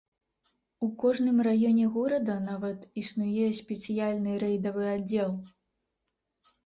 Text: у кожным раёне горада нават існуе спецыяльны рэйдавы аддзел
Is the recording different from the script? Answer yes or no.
no